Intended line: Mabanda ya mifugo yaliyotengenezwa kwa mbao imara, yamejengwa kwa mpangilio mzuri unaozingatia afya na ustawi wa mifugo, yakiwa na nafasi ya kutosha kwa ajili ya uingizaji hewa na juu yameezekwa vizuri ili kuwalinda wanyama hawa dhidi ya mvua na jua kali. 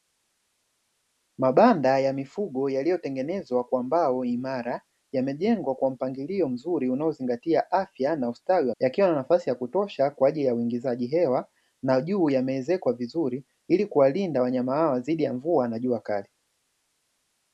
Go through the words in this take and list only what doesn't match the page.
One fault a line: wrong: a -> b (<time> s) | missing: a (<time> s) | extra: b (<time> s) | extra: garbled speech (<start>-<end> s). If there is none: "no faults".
missing: mifugo (8.8 s)